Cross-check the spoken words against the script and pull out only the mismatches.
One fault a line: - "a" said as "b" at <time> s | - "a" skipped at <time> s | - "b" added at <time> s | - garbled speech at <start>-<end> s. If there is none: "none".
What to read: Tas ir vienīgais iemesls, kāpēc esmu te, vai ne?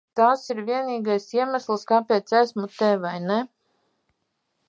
none